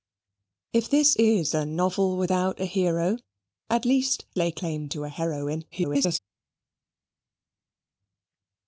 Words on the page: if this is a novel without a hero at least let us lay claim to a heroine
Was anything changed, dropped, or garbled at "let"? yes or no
yes